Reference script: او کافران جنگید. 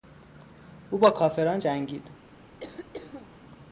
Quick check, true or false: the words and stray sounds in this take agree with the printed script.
false